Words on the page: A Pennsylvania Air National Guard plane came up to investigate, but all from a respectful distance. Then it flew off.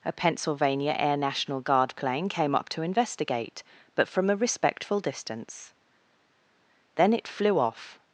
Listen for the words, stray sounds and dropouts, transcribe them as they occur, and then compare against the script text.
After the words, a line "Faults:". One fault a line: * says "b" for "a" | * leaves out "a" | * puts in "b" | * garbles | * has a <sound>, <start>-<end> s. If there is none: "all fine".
A Pennsylvania Air National Guard plane came up to investigate, but from a respectful distance. Then it flew off.
Faults:
* leaves out "all"